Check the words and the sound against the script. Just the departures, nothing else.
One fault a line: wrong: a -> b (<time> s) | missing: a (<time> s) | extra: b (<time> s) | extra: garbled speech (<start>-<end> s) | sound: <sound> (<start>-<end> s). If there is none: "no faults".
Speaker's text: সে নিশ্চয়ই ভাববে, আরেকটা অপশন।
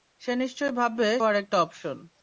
no faults